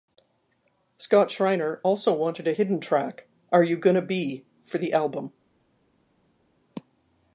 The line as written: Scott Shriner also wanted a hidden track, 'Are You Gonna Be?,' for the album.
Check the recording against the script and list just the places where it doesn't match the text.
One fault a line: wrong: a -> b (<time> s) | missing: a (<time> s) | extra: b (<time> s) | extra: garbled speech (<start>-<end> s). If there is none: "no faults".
no faults